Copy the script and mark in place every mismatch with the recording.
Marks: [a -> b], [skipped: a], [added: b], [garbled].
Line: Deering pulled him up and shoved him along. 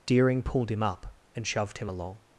Deering pulled him up and shoved him along.